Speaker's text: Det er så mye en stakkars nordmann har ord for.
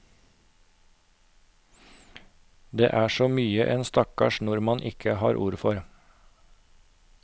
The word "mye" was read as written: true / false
true